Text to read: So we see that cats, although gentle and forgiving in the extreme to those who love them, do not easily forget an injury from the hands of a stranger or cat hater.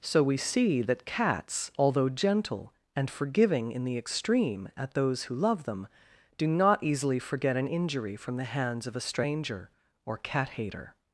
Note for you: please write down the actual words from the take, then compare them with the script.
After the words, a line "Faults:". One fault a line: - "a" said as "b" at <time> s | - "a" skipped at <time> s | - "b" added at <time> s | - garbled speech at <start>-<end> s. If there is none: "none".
So we see that cats, although gentle and forgiving in the extreme at those who love them, do not easily forget an injury from the hands of a stranger or cat hater.
Faults:
- "to" said as "at" at 4.8 s